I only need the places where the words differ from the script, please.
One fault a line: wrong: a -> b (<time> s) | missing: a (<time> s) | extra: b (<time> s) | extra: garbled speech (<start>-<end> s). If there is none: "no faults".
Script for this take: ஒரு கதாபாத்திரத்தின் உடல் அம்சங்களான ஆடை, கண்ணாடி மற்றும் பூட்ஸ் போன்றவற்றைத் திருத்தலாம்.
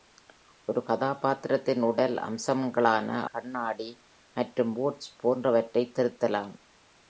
missing: ஆடை (3.1 s)